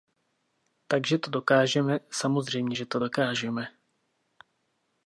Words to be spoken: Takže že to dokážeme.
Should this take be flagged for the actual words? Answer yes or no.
yes